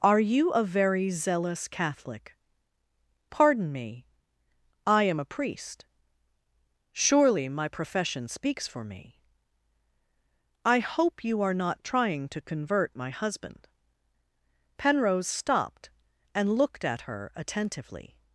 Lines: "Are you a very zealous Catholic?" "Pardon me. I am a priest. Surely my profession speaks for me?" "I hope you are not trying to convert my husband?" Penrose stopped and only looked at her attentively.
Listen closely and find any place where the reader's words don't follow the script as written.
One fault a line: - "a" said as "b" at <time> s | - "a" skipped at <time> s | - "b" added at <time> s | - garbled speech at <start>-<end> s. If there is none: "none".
- "only" skipped at 16.6 s